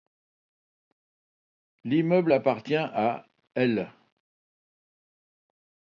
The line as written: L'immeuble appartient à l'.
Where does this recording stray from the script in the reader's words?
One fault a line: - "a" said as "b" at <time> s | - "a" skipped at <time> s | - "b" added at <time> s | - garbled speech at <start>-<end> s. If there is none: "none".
none